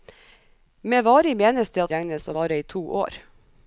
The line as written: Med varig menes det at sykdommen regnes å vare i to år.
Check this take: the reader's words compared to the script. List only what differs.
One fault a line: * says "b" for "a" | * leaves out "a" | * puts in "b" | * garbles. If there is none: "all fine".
* leaves out "sykdommen"